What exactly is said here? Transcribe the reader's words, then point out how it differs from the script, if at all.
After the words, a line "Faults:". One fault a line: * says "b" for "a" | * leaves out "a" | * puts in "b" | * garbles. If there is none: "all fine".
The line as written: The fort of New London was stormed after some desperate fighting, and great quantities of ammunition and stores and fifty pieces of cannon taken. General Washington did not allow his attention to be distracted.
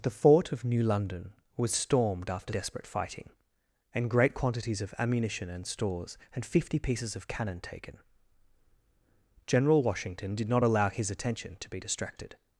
The fort of New London was stormed after desperate fighting, and great quantities of ammunition and stores and fifty pieces of cannon taken. General Washington did not allow his attention to be distracted.
Faults:
* leaves out "some"